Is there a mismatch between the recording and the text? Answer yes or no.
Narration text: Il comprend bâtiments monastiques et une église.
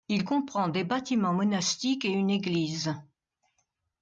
yes